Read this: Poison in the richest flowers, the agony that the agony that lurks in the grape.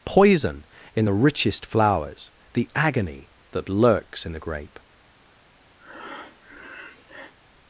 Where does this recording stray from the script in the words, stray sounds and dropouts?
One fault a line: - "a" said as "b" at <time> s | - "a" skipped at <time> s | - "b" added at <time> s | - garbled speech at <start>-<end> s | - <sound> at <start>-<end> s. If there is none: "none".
- "the agony that" skipped at 3.7 s
- breath at 5.8-7.3 s